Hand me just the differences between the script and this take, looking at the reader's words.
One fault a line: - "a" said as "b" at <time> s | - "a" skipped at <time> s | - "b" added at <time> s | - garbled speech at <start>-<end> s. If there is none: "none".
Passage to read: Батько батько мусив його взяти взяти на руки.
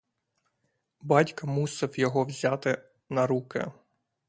- "батько" skipped at 1.5 s
- "взяти" skipped at 2.8 s